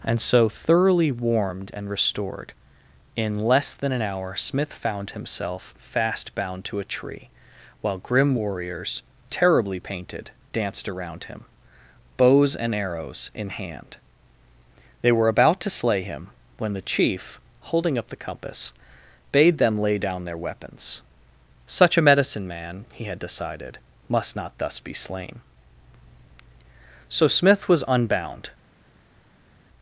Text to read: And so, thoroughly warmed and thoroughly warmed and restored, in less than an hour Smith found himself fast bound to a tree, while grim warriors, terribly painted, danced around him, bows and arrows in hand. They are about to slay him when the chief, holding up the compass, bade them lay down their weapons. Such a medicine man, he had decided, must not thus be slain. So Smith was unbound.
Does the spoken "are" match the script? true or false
false